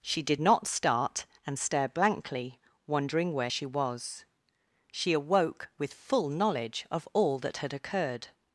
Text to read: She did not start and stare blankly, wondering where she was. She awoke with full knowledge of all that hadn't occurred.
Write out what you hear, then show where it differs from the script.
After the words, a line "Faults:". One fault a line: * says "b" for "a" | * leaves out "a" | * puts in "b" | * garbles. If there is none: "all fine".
She did not start and stare blankly, wondering where she was. She awoke with full knowledge of all that had occurred.
Faults:
* says "had" for "hadn't"